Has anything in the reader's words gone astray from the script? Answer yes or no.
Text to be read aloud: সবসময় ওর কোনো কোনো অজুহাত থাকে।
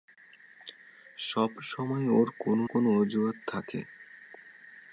no